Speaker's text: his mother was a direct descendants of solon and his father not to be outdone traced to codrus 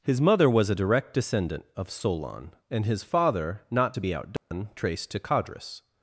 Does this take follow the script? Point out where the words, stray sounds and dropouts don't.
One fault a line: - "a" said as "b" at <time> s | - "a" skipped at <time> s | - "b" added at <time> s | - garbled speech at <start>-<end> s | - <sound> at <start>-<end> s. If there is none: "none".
- "descendants" said as "descendant" at 1.1 s
- dropout at 4.4-4.5 s